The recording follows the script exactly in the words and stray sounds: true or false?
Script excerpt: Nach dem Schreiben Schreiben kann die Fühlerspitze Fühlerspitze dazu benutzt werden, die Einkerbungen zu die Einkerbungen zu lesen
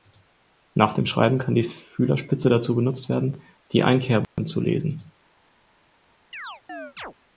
false